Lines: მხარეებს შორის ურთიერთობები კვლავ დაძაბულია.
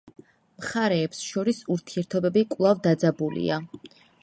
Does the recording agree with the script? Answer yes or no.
yes